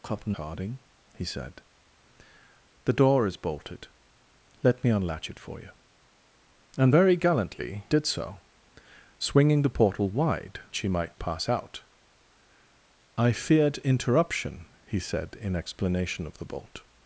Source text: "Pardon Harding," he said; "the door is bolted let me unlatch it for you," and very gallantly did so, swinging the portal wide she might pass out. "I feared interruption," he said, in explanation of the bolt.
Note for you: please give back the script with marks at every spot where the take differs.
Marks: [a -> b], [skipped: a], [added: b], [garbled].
"Pardon Harding," he said; "the door is bolted let me unlatch it for you," and very gallantly did so, swinging the portal wide she might pass out. "I feared interruption," he said, in explanation of the bolt.